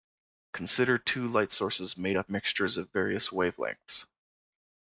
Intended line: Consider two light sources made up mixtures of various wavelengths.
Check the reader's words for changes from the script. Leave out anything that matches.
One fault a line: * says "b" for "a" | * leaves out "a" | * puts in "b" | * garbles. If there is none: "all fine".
all fine